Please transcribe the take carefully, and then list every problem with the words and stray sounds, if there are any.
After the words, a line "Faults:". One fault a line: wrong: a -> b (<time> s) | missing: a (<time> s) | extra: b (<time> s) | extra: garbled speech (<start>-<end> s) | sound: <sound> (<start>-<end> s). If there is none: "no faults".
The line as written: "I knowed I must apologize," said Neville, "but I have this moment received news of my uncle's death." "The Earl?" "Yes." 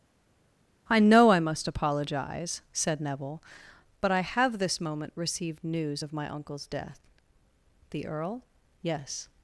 "I know I must apologize," said Neville, "but I have this moment received news of my uncle's death." "The Earl?" "Yes."
Faults:
wrong: knowed -> know (1.0 s)